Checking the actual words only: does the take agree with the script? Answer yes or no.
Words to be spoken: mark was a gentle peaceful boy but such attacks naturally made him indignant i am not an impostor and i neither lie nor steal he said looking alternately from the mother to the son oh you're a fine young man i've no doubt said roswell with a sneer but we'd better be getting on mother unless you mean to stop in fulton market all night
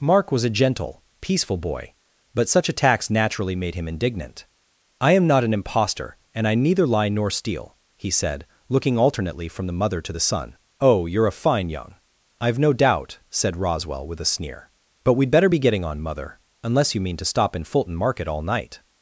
no